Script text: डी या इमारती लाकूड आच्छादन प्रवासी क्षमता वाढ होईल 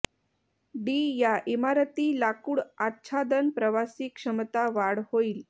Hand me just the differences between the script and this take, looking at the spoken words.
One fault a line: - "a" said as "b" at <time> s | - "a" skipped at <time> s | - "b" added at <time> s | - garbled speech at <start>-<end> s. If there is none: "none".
none